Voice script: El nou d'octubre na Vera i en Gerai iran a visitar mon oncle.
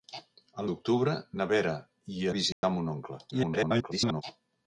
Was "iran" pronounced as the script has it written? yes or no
no